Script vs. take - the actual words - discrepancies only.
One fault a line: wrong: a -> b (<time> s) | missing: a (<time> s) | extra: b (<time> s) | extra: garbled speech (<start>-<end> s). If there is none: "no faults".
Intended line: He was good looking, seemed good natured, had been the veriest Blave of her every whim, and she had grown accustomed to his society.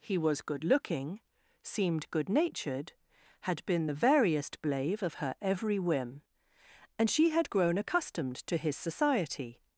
no faults